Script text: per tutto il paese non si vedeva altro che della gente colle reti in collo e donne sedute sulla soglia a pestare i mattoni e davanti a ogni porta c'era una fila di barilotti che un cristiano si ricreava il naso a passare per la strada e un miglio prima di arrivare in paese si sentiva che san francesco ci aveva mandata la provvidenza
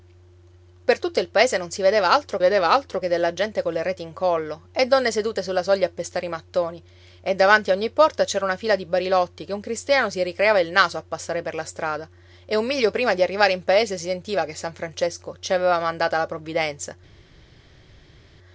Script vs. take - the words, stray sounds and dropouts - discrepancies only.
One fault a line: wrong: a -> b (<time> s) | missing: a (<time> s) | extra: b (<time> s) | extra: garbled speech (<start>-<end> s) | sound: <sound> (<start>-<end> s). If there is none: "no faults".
extra: vedeva altro (2.4 s)